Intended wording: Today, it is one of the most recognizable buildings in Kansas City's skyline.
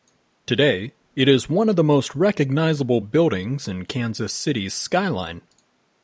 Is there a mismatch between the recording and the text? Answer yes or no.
no